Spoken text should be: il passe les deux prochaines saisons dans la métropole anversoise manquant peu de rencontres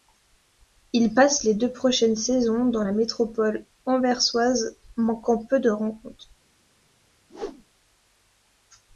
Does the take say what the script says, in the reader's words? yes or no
yes